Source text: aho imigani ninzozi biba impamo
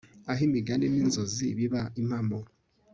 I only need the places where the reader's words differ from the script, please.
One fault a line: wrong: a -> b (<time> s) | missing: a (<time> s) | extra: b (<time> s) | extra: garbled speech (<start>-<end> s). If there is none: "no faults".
no faults